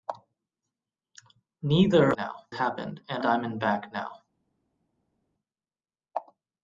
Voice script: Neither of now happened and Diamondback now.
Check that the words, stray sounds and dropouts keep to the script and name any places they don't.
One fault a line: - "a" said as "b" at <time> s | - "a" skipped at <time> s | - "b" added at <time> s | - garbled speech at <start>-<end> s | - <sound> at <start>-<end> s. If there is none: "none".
none